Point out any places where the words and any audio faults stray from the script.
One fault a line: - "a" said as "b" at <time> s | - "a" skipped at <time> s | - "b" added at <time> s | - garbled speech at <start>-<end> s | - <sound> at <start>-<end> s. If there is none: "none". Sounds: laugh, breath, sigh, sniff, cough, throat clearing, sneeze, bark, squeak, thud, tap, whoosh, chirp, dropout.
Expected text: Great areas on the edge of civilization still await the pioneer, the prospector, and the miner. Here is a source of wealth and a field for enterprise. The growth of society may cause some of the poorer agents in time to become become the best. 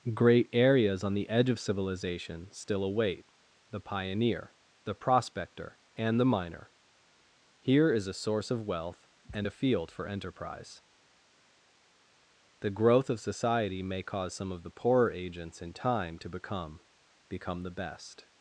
none